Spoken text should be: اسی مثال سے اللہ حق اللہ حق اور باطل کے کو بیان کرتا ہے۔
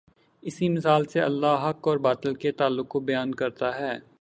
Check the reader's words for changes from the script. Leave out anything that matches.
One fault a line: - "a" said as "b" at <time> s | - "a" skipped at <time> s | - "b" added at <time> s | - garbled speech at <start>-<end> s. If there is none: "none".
- "اللہ حق" skipped at 1.9 s
- "تعلق" added at 2.5 s